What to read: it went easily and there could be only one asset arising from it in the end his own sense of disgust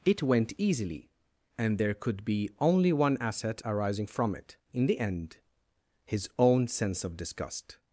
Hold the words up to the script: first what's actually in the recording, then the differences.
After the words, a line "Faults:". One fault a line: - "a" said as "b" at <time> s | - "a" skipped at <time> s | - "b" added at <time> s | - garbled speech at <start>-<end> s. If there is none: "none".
it went easily and there could be only one asset arising from it in the end his own sense of disgust
Faults:
none